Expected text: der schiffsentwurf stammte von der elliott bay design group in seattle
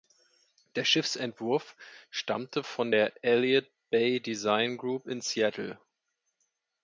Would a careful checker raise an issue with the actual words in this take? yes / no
no